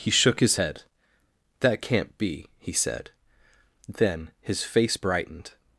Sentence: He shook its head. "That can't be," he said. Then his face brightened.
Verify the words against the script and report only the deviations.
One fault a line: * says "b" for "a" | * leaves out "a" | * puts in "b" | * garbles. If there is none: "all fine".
* says "his" for "its"